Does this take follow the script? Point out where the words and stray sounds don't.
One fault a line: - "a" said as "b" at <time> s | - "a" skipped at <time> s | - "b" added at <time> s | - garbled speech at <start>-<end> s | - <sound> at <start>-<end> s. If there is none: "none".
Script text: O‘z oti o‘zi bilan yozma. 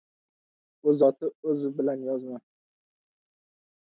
none